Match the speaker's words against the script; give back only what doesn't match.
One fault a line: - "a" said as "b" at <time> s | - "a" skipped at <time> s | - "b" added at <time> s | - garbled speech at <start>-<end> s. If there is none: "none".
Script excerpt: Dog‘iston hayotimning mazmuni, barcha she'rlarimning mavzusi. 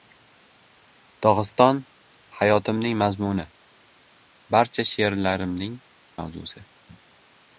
none